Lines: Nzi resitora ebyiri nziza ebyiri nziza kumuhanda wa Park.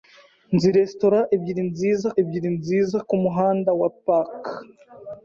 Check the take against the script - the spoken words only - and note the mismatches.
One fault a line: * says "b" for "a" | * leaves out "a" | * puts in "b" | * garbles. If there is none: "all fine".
all fine